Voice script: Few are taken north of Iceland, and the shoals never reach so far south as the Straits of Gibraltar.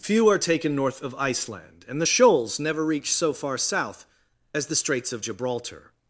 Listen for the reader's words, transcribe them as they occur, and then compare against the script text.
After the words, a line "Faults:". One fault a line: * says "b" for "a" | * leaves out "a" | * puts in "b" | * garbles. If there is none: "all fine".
Few are taken north of Iceland, and the shoals never reach so far south as the Straits of Gibraltar.
Faults:
all fine